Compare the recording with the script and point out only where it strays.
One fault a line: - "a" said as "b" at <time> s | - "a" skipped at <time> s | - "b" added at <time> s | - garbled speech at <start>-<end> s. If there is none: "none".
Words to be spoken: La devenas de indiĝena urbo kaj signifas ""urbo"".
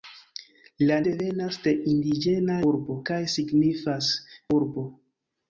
none